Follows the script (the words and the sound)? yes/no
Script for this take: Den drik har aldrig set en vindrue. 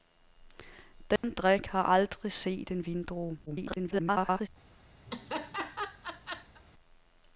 no